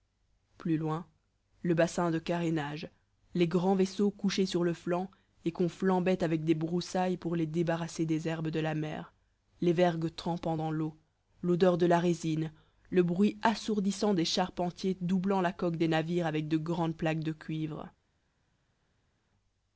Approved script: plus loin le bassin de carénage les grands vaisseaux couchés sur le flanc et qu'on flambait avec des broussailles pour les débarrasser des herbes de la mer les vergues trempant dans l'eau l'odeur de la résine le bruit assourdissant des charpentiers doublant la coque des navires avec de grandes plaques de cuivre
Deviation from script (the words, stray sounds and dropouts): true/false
false